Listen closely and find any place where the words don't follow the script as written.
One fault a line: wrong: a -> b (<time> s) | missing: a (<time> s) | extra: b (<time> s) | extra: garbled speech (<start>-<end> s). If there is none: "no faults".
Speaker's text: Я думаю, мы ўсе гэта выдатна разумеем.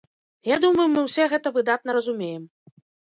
no faults